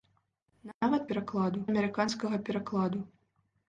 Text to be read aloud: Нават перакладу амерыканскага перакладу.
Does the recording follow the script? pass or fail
pass